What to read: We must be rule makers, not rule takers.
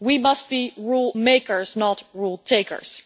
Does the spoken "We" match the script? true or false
true